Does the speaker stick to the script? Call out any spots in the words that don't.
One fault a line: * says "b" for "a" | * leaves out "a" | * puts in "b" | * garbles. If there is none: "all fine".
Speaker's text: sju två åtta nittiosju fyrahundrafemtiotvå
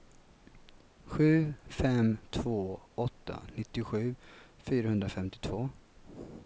* puts in "fem"